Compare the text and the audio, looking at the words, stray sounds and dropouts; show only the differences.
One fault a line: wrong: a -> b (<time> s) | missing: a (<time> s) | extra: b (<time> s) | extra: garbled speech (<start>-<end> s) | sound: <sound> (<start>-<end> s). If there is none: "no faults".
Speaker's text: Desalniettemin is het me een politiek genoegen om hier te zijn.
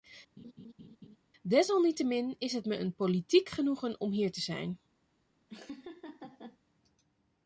sound: laugh (0.4-1.2 s)
sound: laugh (5.5-6.6 s)